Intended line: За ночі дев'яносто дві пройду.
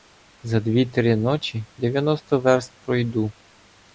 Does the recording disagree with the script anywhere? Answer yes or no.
yes